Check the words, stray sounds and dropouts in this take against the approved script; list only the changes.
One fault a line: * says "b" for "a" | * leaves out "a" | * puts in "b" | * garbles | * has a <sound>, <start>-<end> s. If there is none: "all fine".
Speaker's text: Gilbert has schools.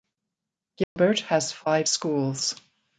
* has a dropout, 0.8-1.0 s
* puts in "five"